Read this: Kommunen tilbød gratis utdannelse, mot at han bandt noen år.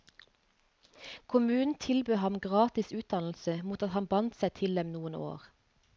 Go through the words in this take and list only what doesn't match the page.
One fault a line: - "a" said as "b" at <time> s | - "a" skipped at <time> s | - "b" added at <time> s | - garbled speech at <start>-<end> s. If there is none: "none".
- "ham" added at 2.1 s
- "seg til dem" added at 4.4 s